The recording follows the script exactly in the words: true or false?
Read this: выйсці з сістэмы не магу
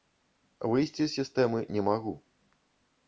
true